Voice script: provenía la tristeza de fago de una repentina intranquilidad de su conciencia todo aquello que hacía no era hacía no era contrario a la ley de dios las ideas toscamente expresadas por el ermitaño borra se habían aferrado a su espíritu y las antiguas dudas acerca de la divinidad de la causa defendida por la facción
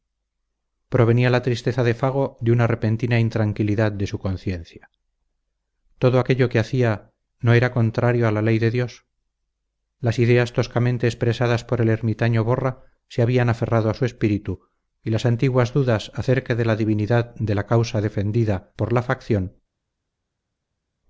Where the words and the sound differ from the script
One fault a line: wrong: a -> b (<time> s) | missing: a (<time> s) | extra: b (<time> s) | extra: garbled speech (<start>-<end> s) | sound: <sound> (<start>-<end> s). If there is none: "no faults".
missing: hacía no era (7.7 s)